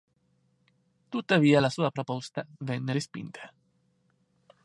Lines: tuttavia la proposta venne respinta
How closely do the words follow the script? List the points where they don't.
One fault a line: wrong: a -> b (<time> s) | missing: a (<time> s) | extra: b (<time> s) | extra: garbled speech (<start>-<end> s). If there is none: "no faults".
extra: sua (1.7 s)